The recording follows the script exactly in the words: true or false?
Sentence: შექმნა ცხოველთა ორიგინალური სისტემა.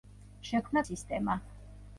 false